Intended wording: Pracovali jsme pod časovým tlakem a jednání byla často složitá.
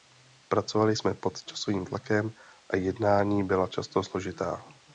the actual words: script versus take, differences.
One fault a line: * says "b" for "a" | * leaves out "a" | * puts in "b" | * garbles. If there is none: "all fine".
all fine